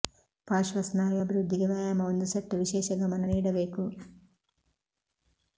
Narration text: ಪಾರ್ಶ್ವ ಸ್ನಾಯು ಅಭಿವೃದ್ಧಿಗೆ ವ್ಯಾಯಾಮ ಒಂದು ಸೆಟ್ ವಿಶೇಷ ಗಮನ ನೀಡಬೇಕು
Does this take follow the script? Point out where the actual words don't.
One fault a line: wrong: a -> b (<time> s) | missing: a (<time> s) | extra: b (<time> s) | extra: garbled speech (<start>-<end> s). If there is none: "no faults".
no faults